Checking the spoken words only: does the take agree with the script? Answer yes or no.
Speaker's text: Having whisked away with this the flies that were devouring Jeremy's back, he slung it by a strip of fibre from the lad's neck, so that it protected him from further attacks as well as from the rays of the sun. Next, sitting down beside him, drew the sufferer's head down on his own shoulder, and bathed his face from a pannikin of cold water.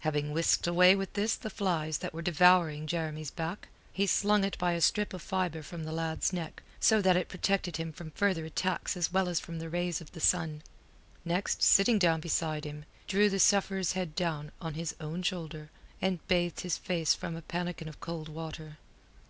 yes